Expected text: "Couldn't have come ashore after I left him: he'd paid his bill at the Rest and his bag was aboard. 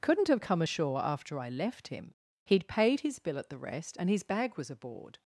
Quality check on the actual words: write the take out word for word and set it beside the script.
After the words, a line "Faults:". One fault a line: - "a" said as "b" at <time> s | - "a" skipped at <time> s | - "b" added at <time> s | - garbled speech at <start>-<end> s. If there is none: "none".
"Couldn't have come ashore after I left him: he'd paid his bill at the Rest and his bag was aboard.
Faults:
none